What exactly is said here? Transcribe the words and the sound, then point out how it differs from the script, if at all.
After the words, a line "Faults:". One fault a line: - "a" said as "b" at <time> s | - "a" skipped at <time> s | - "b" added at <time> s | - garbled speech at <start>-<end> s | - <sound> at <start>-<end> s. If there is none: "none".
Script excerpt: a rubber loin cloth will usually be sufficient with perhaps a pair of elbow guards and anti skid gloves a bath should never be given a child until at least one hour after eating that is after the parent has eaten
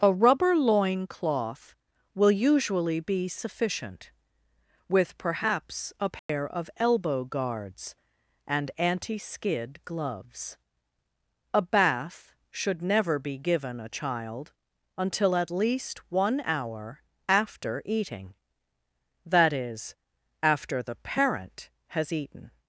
a rubber loin cloth will usually be sufficient with perhaps a pair of elbow guards and anti skid gloves a bath should never be given a child until at least one hour after eating that is after the parent has eaten
Faults:
- dropout at 6.2-6.3 s